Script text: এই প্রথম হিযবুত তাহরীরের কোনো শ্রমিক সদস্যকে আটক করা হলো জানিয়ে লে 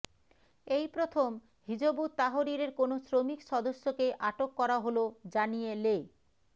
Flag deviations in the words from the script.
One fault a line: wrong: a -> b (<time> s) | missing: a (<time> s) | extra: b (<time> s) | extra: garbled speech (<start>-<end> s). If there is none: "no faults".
no faults